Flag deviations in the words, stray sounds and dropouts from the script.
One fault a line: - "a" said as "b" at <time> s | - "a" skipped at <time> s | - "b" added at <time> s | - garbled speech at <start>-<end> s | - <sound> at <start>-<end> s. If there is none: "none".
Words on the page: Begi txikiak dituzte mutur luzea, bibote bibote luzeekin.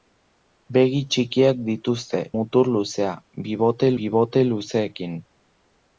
none